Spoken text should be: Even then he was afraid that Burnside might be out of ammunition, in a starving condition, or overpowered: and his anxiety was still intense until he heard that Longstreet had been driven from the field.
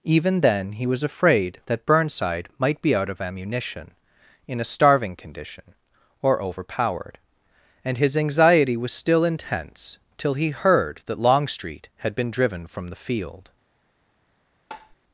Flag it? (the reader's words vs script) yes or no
yes